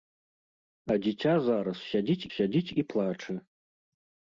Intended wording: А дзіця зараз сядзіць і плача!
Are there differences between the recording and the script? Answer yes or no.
yes